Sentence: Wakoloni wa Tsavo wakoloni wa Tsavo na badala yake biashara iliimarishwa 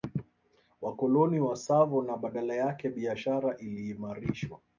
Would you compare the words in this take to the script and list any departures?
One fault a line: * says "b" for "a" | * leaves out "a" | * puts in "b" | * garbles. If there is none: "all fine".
* leaves out "wakoloni wa Tsavo"